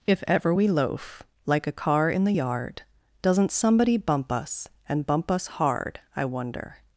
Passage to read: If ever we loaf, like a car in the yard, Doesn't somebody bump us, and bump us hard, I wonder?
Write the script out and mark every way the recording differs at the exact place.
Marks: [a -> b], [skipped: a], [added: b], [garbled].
If ever we loaf, like a car in the yard, Doesn't somebody bump us, and bump us hard, I wonder?